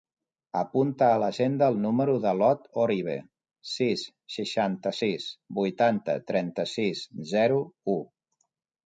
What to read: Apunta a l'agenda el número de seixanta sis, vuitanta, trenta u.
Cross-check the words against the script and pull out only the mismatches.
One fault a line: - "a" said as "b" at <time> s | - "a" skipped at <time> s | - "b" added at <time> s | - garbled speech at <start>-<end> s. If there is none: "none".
- "l'Ot Orive sis" added at 2.4 s
- "sis zero" added at 6.8 s